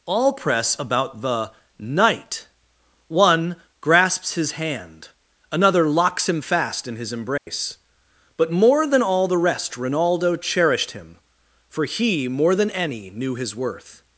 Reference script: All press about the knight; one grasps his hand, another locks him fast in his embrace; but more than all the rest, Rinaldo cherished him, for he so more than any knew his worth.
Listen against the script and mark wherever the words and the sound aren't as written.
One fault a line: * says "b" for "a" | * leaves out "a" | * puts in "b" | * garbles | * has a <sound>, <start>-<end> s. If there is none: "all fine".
* has a dropout, 7.4-7.5 s
* leaves out "so"